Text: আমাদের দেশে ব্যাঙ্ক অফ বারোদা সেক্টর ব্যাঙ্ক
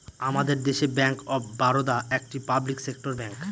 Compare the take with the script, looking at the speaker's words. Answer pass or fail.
fail